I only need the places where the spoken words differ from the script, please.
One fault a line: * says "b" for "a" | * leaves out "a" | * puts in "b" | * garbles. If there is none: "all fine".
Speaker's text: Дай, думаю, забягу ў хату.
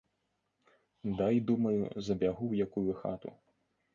* puts in "якую"